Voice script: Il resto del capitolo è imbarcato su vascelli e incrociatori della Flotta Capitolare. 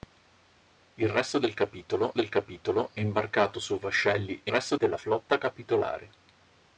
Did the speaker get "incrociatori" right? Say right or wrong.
wrong